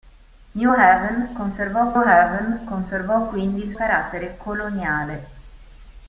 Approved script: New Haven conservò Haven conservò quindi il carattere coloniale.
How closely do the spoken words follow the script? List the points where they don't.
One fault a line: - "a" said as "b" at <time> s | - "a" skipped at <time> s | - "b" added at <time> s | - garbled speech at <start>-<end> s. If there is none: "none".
none